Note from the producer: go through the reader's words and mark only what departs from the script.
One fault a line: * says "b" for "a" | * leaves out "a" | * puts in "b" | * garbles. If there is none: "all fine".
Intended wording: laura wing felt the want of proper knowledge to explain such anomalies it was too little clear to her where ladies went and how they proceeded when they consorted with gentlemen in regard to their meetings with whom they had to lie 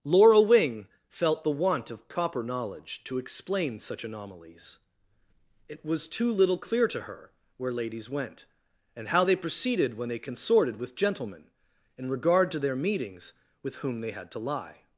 all fine